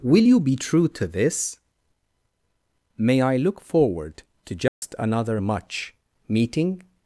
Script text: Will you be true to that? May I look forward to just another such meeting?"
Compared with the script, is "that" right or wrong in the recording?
wrong